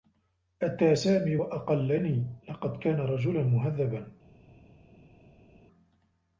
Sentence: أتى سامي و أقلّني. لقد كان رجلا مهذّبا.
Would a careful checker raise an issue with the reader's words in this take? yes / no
no